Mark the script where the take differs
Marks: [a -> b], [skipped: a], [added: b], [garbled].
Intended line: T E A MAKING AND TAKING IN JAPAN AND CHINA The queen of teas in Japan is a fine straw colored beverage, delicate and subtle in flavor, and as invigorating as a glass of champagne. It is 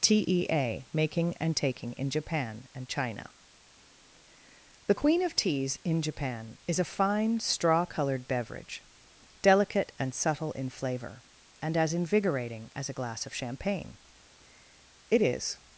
T E A MAKING AND TAKING IN JAPAN AND CHINA The queen of teas in Japan is a fine straw colored beverage, delicate and subtle in flavor, and as invigorating as a glass of champagne. It is